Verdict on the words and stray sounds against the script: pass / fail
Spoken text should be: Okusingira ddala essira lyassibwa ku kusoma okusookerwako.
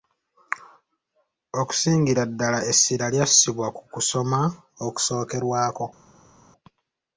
pass